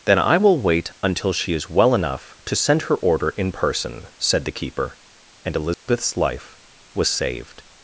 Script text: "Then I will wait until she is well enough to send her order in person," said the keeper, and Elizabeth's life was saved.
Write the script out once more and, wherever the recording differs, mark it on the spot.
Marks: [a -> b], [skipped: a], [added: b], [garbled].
"Then I will wait until she is well enough to send her order in person," said the keeper, and Elizabeth's life was saved.